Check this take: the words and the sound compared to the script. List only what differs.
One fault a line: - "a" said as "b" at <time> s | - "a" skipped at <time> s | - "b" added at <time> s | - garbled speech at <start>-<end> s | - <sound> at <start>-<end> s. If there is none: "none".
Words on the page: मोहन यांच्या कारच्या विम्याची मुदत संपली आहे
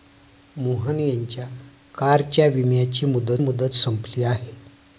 - "मुदत" added at 3.4 s